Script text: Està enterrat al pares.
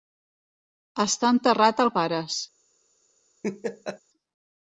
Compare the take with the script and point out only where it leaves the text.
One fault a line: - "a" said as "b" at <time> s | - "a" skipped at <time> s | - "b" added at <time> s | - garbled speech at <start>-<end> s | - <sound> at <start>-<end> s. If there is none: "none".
- laugh at 3.4-4.0 s